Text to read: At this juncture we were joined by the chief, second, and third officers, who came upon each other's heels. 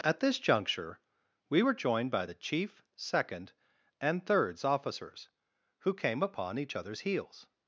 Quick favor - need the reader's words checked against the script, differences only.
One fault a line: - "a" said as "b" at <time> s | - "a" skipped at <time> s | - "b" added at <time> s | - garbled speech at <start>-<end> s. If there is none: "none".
- "third" said as "thirds" at 4.3 s